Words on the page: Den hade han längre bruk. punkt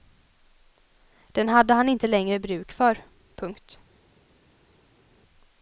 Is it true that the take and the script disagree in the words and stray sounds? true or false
true